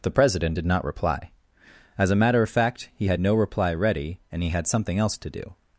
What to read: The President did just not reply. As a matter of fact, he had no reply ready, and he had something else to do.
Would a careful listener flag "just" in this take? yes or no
yes